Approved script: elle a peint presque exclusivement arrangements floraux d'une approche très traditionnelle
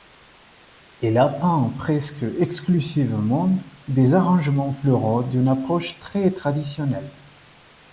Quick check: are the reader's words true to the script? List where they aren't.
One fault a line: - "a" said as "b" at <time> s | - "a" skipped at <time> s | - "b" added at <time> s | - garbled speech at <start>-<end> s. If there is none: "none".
- "des" added at 3.9 s